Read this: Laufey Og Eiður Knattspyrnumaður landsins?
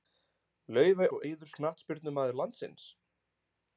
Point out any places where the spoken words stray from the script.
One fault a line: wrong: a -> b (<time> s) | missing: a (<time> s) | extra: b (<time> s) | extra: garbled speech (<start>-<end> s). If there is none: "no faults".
no faults